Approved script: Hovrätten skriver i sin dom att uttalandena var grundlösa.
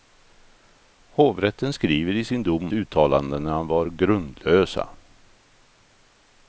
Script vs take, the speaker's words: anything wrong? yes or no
yes